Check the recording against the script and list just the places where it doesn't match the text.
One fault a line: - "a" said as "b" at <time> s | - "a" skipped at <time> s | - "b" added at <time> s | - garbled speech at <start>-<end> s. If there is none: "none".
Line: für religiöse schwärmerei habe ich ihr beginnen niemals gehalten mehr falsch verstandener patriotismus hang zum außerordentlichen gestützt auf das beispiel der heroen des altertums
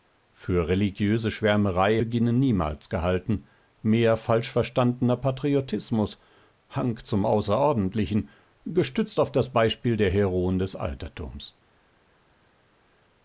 - "habe ich ihr" skipped at 2.0 s